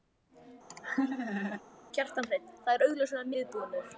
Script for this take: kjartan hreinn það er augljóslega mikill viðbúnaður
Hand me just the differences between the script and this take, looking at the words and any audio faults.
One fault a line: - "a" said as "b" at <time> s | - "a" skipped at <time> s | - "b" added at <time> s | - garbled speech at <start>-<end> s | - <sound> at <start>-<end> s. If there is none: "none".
- laugh at 0.7-1.6 s
- "mikill" skipped at 3.3 s